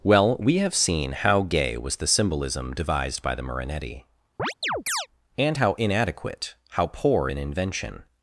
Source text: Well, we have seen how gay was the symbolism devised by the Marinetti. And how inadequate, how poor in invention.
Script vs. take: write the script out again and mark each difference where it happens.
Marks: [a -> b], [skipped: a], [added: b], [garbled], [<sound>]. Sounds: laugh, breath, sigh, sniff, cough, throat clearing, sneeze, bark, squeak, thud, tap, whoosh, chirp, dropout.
Well, we have seen how gay was the symbolism devised by the Marinetti. [chirp] And how inadequate, how poor in invention.